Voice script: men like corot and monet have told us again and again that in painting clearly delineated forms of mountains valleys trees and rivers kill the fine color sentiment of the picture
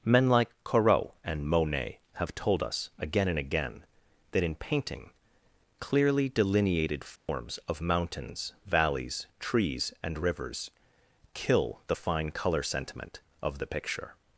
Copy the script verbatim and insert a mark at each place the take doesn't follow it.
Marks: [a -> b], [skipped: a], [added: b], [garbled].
men like corot and monet have told us again and again that in painting clearly delineated forms of mountains valleys trees and rivers kill the fine color sentiment of the picture